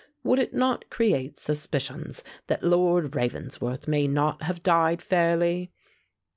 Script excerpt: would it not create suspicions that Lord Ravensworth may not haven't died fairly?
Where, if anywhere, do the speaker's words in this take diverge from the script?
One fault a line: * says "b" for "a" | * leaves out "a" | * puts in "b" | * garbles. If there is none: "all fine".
* says "have" for "haven't"